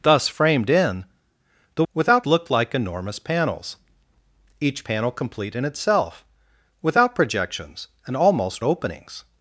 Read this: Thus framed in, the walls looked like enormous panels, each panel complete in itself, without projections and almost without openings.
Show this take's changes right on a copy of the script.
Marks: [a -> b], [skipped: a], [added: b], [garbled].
Thus framed in, the [walls -> without] looked like enormous panels, each panel complete in itself, without projections and almost [skipped: without] openings.